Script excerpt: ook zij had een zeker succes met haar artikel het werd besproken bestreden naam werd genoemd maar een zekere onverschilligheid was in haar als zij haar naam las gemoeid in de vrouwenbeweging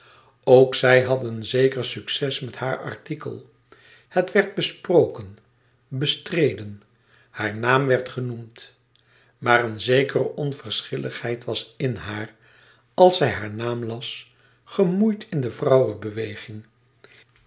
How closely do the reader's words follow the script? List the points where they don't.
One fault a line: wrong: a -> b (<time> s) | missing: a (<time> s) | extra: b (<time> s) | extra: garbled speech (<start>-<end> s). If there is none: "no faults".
extra: haar (7.3 s)